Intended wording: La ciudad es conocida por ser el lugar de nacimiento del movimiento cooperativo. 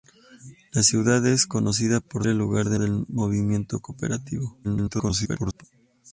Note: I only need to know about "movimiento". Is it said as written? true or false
true